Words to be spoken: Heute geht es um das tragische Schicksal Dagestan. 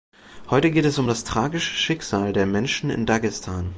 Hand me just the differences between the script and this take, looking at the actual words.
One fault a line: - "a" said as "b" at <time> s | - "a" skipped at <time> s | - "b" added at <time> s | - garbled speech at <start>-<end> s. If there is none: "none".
- "der Menschen in" added at 2.3 s